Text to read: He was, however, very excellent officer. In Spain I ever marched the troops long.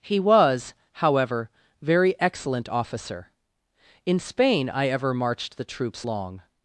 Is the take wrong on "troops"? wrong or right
right